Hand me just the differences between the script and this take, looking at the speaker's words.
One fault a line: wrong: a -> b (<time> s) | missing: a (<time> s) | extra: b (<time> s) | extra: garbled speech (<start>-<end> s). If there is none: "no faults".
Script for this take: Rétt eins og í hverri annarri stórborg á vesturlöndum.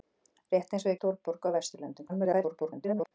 missing: hverri annarri (1.0 s)
extra: garbled speech (2.1-3.1 s)